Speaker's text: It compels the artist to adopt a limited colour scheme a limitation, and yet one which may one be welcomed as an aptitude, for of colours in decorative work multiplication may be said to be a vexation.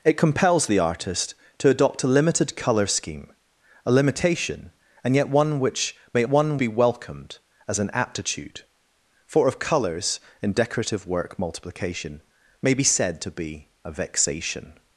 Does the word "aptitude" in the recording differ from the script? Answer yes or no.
no